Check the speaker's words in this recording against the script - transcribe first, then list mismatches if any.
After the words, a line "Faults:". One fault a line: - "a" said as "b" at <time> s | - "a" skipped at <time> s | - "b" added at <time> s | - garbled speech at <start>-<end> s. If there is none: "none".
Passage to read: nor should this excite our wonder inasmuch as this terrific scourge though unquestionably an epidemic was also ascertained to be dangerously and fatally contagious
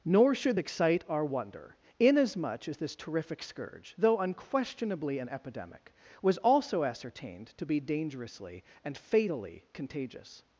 nor should excite our wonder inasmuch as this terrific scourge though unquestionably an epidemic was also ascertained to be dangerously and fatally contagious
Faults:
- "this" skipped at 0.6 s